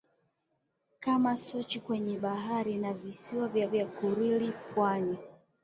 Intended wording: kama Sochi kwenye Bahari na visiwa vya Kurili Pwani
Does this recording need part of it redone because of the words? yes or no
yes